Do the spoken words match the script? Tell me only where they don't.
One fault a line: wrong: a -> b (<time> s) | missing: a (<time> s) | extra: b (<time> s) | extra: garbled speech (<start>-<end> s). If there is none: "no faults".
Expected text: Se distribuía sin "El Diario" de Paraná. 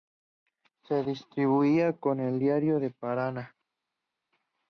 wrong: sin -> con (2.0 s)